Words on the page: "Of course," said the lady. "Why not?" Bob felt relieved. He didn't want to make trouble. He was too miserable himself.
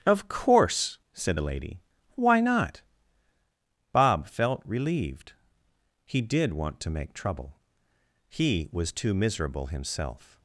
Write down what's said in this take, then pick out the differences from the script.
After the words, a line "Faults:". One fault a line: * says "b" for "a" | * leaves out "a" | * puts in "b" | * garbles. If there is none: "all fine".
"Of course," said the lady. "Why not?" Bob felt relieved. He did want to make trouble. He was too miserable himself.
Faults:
* says "did" for "didn't"